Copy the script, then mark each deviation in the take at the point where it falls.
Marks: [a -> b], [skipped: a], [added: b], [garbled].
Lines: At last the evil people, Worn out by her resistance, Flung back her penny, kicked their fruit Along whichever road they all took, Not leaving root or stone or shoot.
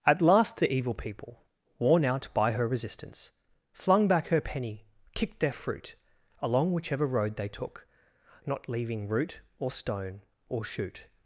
At last the evil people, Worn out by her resistance, Flung back her penny, kicked their fruit Along whichever road they [skipped: all] took, Not leaving root or stone or shoot.